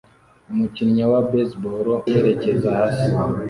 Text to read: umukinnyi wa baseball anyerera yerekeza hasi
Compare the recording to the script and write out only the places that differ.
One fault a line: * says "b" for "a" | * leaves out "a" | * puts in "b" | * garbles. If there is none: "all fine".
* leaves out "anyerera"